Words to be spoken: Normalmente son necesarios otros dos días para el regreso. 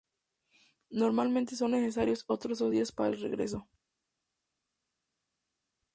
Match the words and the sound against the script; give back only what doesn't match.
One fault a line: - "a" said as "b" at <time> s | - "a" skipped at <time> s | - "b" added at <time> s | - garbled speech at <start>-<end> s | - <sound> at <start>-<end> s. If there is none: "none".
none